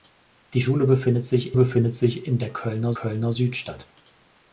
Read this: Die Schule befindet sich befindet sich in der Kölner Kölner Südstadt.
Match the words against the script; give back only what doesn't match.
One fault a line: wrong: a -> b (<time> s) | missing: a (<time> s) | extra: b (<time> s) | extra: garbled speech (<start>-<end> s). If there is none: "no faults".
no faults